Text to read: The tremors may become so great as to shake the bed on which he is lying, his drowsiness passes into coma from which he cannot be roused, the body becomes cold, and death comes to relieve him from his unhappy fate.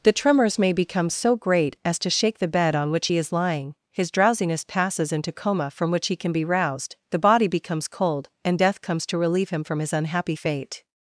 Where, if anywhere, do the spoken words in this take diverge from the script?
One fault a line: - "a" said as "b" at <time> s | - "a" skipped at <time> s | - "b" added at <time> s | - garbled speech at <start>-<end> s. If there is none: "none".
- "cannot" said as "can" at 6.1 s